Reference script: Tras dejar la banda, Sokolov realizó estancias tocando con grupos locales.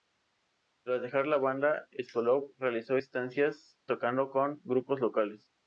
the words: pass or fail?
pass